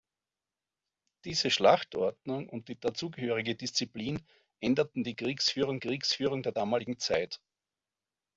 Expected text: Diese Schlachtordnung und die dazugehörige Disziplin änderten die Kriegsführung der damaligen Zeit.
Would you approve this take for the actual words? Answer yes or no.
no